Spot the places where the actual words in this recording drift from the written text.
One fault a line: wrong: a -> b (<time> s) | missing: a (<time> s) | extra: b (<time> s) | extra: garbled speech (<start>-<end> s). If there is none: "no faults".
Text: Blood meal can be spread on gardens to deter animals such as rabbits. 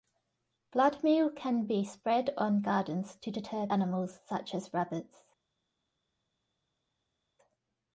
no faults